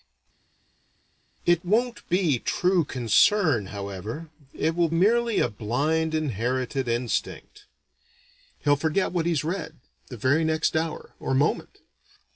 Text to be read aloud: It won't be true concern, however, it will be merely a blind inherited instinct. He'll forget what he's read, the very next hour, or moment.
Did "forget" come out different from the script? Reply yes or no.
no